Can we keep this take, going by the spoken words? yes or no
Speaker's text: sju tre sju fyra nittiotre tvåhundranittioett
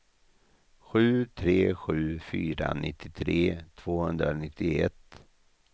yes